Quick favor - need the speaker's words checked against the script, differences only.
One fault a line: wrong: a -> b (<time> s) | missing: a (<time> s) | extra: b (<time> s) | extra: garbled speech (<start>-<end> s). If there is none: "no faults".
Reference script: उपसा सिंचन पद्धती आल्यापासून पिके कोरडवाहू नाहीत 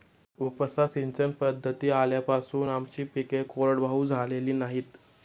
extra: आमची (2.7 s)
extra: झालेली (4.1 s)